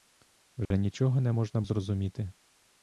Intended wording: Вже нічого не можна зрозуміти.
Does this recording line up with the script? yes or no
yes